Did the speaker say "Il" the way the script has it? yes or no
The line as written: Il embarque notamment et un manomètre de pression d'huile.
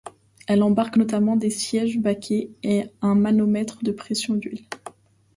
no